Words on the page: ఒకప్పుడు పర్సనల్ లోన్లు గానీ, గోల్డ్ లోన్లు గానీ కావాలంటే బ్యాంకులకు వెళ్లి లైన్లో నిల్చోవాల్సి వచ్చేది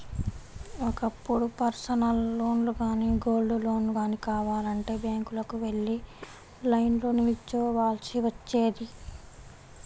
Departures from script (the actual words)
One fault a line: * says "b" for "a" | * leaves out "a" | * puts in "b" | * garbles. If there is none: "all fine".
all fine